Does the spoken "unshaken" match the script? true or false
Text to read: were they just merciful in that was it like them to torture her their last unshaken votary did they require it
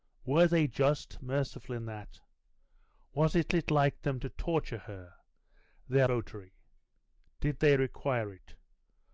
false